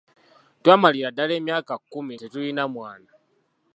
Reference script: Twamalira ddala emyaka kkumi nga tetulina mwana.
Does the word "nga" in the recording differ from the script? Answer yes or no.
yes